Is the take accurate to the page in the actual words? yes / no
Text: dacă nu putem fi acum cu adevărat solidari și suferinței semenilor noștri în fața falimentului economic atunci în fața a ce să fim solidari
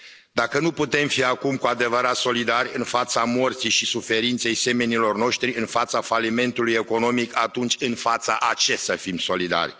no